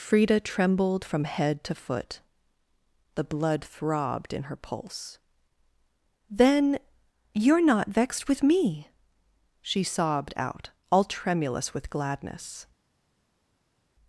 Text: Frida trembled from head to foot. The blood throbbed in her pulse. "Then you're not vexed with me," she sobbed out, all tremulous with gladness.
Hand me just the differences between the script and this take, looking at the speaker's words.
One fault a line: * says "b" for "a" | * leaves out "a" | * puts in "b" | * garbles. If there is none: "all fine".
all fine